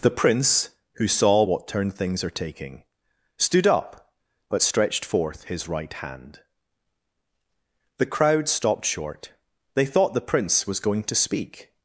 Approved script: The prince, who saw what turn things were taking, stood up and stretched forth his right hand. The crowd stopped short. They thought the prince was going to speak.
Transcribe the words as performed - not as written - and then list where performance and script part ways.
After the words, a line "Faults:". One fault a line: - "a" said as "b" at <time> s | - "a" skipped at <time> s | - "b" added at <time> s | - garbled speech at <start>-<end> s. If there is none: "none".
The prince, who saw what turn things are taking, stood up but stretched forth his right hand. The crowd stopped short. They thought the prince was going to speak.
Faults:
- "were" said as "are" at 2.2 s
- "and" said as "but" at 4.5 s